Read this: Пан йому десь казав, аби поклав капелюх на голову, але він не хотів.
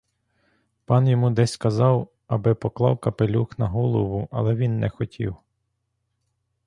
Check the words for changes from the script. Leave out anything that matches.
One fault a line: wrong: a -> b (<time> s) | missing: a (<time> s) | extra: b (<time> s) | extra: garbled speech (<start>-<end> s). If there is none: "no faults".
no faults